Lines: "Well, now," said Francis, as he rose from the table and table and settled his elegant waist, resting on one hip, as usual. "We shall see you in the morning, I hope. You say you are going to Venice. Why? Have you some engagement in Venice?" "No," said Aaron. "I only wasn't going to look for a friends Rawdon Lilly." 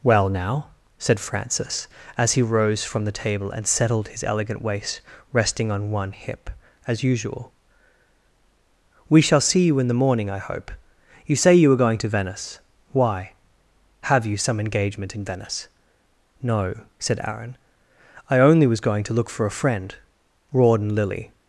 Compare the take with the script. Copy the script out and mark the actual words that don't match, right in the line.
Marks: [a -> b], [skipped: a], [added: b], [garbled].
"Well, now," said Francis, as he rose from the table and [skipped: table and] settled his elegant waist, resting on one hip, as usual. "We shall see you in the morning, I hope. You say you are going to Venice. Why? Have you some engagement in Venice?" "No," said Aaron. "I only [wasn't -> was] going to look for a [friends -> friend] Rawdon Lilly."